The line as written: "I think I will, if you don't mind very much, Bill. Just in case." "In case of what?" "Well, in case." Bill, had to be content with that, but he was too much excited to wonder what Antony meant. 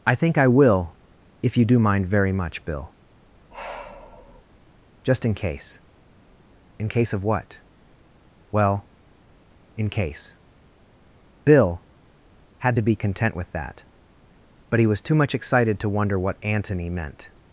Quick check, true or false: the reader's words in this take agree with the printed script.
false